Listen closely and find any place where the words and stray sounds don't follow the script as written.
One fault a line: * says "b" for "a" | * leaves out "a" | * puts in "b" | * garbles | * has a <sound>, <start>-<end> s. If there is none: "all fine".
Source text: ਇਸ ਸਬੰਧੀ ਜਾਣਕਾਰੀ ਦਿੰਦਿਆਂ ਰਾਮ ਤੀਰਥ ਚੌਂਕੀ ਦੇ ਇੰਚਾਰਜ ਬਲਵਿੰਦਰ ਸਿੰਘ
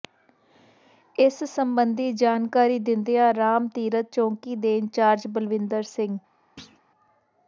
* has a thud, 6.6-6.8 s